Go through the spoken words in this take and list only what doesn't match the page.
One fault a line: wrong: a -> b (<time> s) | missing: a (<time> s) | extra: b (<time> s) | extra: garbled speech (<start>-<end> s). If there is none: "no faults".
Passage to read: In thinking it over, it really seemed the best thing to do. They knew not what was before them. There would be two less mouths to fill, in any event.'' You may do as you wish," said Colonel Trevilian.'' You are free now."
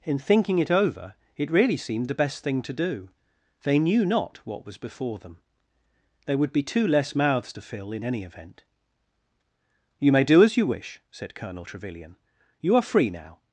no faults